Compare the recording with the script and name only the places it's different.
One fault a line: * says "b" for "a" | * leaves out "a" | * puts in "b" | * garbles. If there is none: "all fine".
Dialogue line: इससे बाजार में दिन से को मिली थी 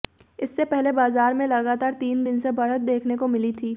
* puts in "पहले"
* puts in "लगातार तीन"
* puts in "बढ़त देखने"